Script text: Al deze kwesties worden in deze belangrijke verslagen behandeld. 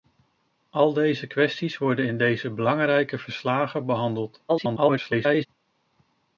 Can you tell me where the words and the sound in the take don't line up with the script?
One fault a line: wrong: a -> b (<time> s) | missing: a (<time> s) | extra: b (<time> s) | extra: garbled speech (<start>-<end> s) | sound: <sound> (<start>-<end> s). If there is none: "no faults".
extra: garbled speech (4.5-5.5 s)